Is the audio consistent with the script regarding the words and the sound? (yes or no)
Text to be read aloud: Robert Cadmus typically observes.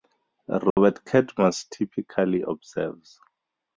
no